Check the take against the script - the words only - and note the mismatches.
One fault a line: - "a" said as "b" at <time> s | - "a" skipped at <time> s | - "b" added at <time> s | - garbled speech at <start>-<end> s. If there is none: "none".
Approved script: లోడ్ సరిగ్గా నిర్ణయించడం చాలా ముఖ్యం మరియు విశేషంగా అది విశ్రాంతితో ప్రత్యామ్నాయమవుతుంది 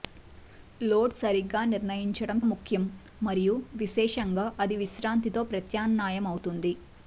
- "చాలా" skipped at 2.4 s